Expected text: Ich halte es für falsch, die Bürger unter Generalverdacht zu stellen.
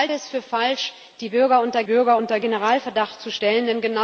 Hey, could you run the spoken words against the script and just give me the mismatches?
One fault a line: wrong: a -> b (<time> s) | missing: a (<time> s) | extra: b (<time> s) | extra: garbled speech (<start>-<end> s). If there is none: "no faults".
missing: halte (0.1 s)
extra: Bürger unter (1.8 s)